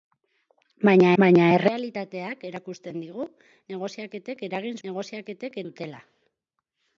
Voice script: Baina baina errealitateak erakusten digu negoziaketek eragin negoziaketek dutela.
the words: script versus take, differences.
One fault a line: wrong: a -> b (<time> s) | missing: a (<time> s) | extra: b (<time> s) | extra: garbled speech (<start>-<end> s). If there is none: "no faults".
no faults